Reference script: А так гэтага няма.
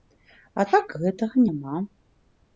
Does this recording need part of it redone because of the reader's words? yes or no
no